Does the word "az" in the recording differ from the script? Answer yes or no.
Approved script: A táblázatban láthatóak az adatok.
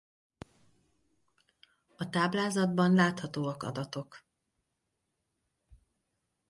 yes